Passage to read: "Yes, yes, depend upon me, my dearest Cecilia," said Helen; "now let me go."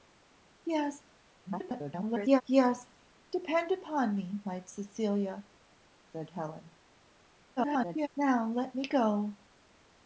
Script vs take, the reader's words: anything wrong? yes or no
yes